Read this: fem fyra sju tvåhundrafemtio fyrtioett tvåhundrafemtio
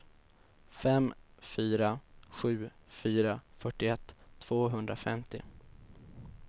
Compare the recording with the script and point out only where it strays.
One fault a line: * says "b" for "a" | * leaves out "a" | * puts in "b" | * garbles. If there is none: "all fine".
* says "fyra" for "tvåhundrafemtio"